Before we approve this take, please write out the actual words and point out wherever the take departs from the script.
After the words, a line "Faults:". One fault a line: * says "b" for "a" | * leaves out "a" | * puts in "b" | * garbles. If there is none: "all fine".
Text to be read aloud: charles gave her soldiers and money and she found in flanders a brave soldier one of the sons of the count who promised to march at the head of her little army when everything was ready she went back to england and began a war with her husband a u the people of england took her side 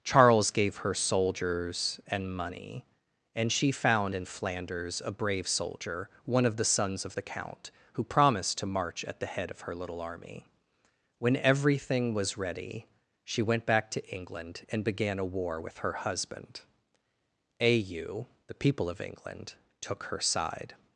charles gave her soldiers and money and she found in flanders a brave soldier one of the sons of the count who promised to march at the head of her little army when everything was ready she went back to england and began a war with her husband a u the people of england took her side
Faults:
all fine